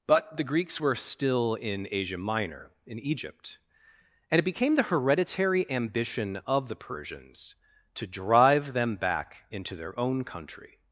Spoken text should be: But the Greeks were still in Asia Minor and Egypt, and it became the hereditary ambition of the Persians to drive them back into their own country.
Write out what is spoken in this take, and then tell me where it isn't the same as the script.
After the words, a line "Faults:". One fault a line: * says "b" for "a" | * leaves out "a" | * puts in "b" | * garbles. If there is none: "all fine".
But the Greeks were still in Asia Minor in Egypt, and it became the hereditary ambition of the Persians to drive them back into their own country.
Faults:
* says "in" for "and"